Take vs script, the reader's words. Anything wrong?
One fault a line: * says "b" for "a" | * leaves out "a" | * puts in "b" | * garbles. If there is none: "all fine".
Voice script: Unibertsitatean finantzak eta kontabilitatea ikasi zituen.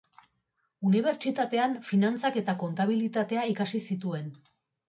all fine